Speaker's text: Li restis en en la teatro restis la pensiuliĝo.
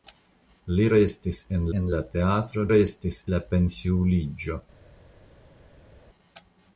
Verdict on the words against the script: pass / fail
pass